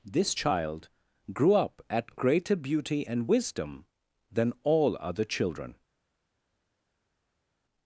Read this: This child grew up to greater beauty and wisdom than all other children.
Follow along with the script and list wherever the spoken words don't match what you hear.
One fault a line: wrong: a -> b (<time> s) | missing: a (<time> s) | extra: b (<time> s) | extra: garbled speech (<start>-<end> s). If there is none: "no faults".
wrong: to -> at (1.9 s)